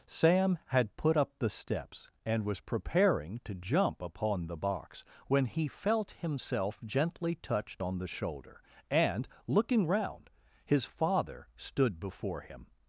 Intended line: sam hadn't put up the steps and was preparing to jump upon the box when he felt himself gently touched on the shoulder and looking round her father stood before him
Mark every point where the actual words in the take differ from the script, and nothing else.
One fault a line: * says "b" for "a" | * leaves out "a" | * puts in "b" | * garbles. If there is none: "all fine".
* says "had" for "hadn't"
* says "his" for "her"